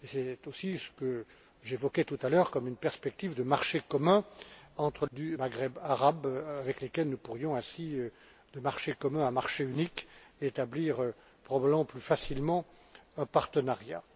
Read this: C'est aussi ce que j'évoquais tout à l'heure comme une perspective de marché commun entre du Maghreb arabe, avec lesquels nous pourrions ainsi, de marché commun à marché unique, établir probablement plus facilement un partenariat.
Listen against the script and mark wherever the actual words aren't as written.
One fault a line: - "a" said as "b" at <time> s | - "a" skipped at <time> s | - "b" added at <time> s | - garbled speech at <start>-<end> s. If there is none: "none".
none